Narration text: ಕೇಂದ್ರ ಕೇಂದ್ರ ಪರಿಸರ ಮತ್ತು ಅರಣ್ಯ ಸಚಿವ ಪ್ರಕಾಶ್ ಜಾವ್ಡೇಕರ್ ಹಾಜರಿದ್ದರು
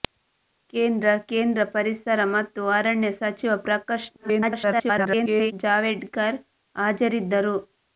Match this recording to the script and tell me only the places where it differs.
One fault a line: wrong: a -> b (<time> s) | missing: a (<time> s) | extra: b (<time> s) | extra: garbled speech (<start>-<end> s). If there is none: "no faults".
extra: garbled speech (4.2-5.5 s)